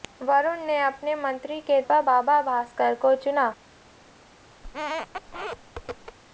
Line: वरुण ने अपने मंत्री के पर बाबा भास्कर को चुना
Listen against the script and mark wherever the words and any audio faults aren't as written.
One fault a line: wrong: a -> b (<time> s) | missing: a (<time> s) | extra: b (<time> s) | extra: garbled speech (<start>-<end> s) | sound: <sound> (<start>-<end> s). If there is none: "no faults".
sound: squeak (4.6-6.2 s)